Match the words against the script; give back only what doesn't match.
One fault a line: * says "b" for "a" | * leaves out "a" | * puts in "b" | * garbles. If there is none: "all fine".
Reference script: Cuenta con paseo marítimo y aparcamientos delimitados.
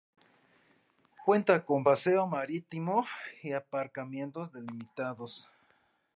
all fine